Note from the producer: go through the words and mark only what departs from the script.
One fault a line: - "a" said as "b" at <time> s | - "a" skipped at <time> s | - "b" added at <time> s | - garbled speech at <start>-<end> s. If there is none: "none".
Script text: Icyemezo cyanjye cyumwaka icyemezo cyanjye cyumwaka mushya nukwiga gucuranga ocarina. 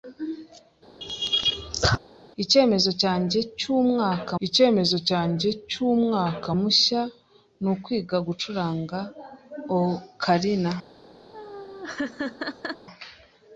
none